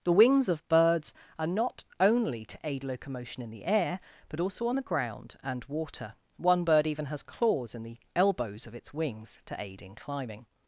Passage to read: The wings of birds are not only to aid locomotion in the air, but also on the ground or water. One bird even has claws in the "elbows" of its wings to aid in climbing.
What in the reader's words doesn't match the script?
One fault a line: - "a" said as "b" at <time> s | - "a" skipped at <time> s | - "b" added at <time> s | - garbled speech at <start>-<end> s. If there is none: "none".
- "or" said as "and" at 5.4 s